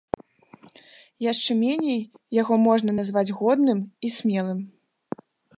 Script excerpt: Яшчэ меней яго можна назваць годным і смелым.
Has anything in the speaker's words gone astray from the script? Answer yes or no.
no